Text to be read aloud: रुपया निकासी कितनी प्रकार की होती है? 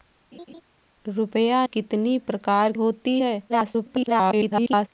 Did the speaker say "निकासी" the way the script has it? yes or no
no